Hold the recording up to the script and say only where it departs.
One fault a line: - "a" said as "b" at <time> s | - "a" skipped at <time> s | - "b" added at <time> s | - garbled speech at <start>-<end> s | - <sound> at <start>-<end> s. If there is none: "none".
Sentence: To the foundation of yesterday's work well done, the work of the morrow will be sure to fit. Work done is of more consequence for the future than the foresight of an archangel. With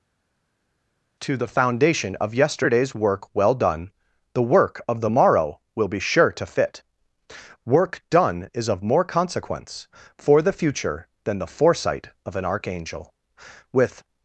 none